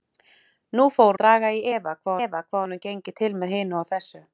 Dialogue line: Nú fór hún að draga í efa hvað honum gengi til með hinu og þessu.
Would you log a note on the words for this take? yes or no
yes